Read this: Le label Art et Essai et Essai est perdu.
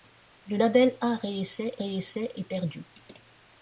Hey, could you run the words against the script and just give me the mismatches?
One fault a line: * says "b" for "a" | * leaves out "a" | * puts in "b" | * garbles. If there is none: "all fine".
all fine